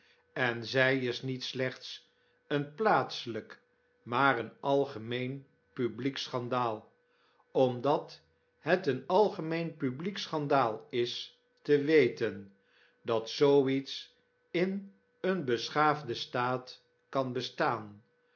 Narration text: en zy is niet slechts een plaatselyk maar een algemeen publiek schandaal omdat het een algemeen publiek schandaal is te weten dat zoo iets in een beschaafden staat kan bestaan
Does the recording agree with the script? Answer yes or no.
yes